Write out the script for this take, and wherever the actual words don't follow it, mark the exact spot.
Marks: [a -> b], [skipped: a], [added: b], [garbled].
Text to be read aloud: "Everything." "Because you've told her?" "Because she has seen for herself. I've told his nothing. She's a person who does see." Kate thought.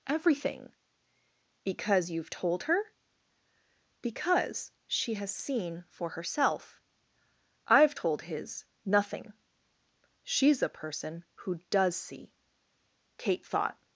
"Everything." "Because you've told her?" "Because she has seen for herself. I've told his nothing. She's a person who does see." Kate thought.